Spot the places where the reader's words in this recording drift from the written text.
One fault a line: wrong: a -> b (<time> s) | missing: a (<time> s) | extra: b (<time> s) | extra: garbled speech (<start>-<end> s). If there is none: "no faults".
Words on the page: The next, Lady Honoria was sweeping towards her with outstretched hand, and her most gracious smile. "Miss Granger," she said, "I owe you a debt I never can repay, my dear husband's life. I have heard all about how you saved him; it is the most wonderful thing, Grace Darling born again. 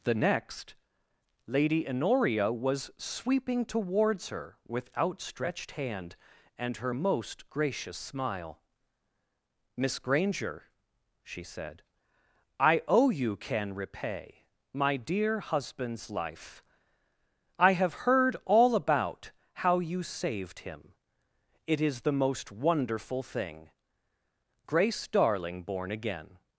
missing: a debt I never (13.4 s)